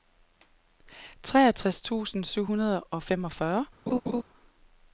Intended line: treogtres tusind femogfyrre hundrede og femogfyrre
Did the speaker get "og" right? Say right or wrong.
right